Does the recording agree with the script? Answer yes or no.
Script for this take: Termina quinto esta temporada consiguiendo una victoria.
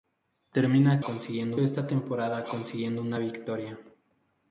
no